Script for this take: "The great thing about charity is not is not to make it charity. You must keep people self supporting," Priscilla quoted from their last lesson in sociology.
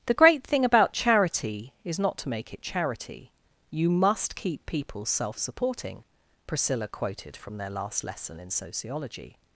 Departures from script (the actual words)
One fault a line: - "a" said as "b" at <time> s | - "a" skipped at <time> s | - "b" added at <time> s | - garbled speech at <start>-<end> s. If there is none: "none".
- "is not" skipped at 2.2 s